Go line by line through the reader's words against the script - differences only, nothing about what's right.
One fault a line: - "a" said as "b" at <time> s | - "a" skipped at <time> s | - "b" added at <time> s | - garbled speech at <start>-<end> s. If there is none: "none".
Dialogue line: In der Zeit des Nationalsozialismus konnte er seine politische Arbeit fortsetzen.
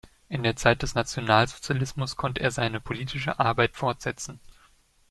none